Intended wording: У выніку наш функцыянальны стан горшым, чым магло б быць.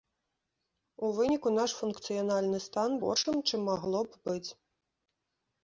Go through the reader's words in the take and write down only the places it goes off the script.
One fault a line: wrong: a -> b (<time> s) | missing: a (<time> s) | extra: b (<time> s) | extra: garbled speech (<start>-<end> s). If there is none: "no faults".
no faults